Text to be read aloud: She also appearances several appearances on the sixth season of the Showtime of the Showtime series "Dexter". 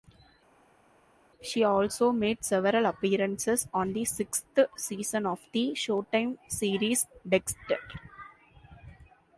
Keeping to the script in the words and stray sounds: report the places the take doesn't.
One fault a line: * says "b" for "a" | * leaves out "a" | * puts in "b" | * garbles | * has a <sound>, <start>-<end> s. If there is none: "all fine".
* says "made" for "appearances"
* leaves out "of the Showtime"